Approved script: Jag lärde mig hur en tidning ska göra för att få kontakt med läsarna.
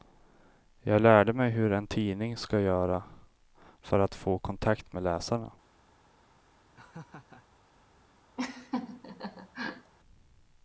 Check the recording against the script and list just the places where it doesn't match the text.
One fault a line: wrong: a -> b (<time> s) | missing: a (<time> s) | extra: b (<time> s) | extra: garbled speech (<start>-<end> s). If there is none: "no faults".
no faults